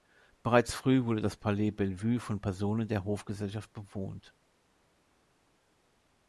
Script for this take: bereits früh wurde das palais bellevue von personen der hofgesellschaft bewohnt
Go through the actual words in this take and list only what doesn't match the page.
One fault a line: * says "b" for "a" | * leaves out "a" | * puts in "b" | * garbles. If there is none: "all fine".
all fine